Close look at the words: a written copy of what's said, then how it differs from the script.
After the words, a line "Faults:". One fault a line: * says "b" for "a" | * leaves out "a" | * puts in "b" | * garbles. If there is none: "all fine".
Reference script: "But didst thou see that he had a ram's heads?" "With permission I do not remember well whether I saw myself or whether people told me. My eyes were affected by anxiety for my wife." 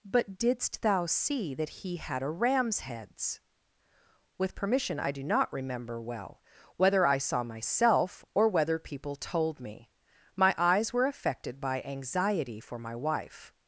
"But didst thou see that he had a ram's heads?" "With permission I do not remember well whether I saw myself or whether people told me. My eyes were affected by anxiety for my wife."
Faults:
all fine